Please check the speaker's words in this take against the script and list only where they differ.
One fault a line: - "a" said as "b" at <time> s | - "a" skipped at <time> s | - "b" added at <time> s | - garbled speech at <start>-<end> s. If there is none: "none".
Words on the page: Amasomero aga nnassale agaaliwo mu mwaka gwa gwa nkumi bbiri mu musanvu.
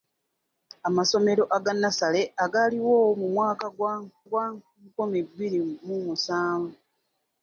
none